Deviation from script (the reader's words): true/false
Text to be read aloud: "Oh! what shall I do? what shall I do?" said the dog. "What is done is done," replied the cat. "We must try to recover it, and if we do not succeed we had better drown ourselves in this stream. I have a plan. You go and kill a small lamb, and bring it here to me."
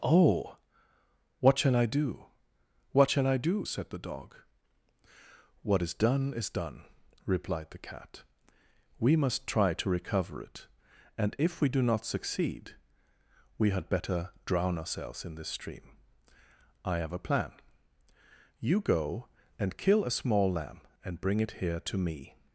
false